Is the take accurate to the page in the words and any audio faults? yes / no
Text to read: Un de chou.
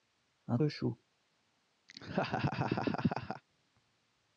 no